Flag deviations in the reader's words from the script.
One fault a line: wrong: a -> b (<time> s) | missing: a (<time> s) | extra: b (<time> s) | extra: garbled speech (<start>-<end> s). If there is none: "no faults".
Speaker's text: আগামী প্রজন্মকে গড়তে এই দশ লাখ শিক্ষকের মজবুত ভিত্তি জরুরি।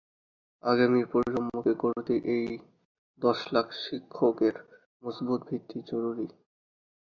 no faults